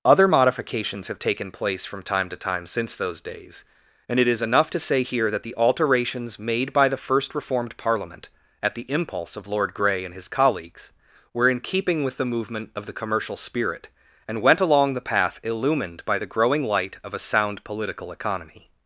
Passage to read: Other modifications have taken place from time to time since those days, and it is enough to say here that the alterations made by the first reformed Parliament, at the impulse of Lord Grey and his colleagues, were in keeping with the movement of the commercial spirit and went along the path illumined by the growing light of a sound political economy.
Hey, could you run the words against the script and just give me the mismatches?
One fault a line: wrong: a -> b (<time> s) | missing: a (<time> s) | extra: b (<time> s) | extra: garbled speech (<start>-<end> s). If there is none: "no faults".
no faults